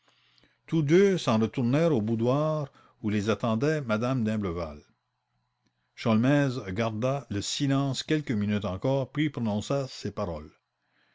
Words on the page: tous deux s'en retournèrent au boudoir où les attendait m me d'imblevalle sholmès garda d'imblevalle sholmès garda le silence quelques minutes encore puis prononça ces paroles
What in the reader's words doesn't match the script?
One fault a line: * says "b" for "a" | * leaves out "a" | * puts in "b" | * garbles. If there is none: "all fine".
* leaves out "d'imblevalle sholmès garda"